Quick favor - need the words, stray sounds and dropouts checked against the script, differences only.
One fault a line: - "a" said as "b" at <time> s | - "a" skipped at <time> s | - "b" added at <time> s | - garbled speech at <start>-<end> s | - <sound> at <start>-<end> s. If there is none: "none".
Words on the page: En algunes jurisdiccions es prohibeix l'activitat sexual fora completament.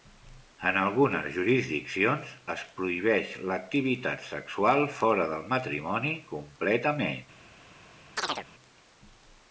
- "del matrimoni" added at 5.3 s
- chirp at 8.2-8.5 s